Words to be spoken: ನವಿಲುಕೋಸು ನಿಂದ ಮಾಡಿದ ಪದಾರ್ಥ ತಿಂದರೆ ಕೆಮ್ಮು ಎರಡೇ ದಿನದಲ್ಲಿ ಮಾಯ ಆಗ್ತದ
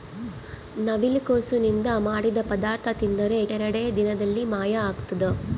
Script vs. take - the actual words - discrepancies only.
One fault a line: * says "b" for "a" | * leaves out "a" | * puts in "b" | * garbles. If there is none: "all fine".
* leaves out "ಕೆಮ್ಮು"